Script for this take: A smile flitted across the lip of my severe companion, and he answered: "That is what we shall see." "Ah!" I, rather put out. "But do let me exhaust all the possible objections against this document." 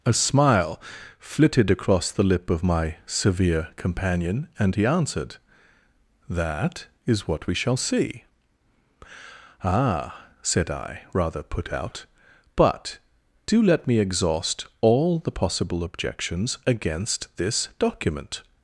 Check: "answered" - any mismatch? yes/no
no